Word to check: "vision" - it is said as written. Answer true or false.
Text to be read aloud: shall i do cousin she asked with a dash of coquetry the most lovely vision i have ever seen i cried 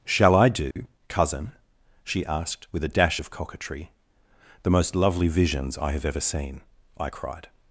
false